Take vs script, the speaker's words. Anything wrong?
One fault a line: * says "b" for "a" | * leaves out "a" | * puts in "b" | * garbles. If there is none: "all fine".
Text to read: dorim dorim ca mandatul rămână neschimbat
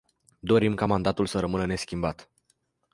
* leaves out "dorim"
* puts in "să"